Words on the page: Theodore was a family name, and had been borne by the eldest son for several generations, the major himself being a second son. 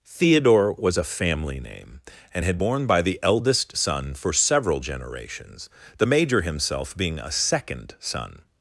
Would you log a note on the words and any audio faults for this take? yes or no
yes